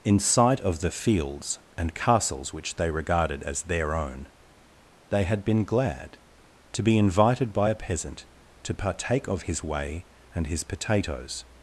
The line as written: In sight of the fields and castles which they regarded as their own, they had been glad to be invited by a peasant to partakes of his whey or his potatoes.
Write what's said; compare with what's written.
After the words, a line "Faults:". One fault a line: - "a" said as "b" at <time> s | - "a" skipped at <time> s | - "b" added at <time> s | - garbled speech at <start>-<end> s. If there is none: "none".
In sight of the fields and castles which they regarded as their own, they had been glad to be invited by a peasant to partake of his whey and his potatoes.
Faults:
- "partakes" said as "partake" at 8.7 s
- "or" said as "and" at 10.3 s